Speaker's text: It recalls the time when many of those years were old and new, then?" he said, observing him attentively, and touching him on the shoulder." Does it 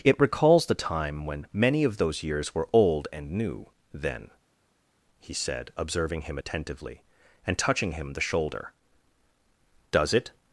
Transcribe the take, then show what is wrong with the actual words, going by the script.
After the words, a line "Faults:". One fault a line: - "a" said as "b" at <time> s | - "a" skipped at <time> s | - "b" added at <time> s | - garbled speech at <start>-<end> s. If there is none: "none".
It recalls the time when many of those years were old and new, then?" he said, observing him attentively, and touching him the shoulder." Does it
Faults:
- "on" skipped at 8.1 s